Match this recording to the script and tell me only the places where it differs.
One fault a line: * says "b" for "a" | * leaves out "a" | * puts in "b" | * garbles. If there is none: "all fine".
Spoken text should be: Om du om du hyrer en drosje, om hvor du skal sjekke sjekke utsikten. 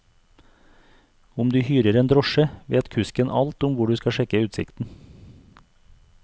* leaves out "om du"
* puts in "vet kusken alt"
* leaves out "sjekke"